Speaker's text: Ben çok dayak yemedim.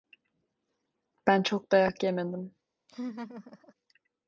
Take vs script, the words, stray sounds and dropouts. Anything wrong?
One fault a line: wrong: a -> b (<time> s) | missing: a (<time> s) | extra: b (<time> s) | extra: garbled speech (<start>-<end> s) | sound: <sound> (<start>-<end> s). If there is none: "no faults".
sound: laugh (2.9-3.7 s)